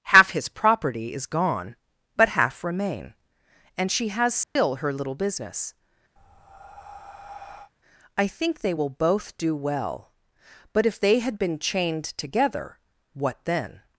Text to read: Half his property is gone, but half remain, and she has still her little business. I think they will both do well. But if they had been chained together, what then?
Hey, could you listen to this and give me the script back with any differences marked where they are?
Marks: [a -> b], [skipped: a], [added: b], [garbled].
Half his property is gone, but half remain, and she has still her little business. I think they will both do well. But if they had been chained together, what then?